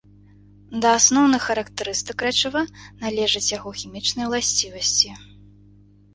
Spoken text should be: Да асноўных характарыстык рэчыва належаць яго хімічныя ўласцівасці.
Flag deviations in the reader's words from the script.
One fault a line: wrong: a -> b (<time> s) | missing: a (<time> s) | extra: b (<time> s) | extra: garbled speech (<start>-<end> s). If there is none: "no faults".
no faults